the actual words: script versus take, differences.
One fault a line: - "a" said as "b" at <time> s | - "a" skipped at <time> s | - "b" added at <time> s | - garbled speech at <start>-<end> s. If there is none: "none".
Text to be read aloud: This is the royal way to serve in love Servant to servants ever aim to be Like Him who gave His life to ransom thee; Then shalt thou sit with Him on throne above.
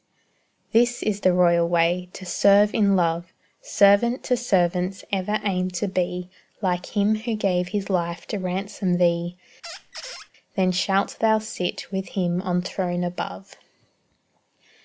none